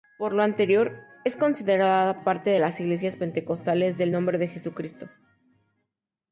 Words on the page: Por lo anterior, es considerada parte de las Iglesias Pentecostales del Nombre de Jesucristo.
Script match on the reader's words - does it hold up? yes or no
yes